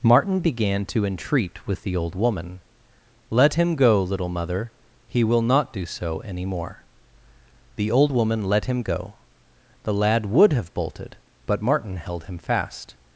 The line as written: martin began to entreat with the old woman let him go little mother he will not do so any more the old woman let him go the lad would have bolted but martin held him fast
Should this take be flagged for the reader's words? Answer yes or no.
no